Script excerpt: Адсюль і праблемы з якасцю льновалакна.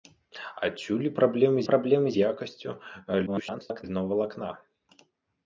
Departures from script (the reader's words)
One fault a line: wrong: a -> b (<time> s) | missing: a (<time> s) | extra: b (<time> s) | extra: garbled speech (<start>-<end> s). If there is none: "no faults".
extra: праблемы (1.7 s)
extra: garbled speech (3.3-3.8 s)